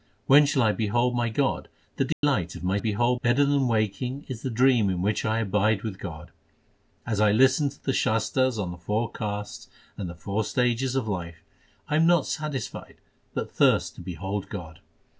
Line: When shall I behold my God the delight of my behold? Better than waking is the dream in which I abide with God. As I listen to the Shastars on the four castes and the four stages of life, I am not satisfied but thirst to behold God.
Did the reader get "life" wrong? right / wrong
right